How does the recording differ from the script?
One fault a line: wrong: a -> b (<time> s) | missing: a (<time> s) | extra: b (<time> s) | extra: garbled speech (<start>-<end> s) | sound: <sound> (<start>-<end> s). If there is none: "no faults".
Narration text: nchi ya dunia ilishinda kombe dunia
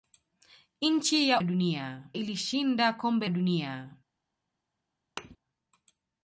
sound: thud (5.2-5.4 s)